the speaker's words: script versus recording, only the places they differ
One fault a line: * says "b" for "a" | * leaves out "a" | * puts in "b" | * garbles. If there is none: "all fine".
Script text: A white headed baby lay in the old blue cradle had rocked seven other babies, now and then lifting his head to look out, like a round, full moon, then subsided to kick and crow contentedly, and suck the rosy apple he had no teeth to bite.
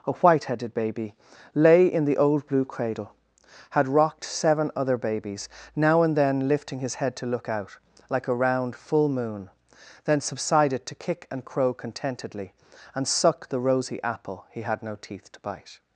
all fine